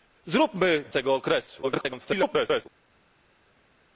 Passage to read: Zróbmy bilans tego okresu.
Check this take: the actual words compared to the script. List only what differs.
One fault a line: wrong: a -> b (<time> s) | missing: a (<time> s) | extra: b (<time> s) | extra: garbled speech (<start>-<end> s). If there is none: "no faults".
missing: bilans (0.8 s)
extra: garbled speech (1.6-2.7 s)